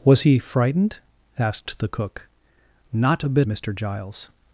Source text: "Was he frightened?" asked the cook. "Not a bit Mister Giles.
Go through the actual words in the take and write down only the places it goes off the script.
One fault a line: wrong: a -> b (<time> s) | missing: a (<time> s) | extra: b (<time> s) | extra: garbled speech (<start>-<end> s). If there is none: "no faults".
no faults